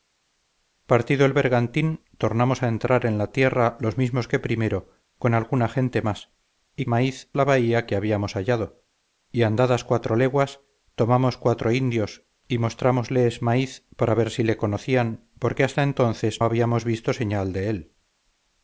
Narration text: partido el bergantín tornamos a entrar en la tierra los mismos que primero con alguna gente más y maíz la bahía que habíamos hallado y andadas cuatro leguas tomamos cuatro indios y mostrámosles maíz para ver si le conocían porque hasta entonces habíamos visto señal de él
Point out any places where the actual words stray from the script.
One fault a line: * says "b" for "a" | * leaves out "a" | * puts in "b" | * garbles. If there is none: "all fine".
all fine